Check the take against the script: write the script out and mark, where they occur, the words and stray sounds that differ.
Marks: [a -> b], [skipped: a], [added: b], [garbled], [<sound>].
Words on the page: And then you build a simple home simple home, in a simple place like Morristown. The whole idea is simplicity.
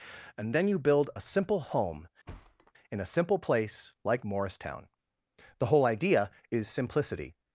And then you build a simple home [skipped: simple home,] [thud] in a simple place like Morristown. The whole idea is simplicity.